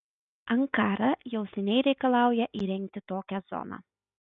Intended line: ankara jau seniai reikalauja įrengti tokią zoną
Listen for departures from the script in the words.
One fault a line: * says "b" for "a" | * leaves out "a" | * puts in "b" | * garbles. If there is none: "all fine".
all fine